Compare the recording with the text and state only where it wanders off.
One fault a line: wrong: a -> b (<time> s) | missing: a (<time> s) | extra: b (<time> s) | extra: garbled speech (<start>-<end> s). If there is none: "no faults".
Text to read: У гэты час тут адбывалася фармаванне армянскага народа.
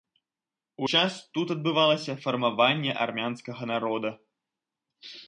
missing: гэты (0.9 s)